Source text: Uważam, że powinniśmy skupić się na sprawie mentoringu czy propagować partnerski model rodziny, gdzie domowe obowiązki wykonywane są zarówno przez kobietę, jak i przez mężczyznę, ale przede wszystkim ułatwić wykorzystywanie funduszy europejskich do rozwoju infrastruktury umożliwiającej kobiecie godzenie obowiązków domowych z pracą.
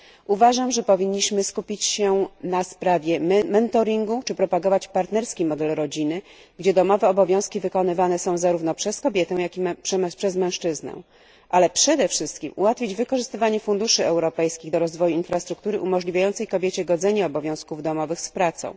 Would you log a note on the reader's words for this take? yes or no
no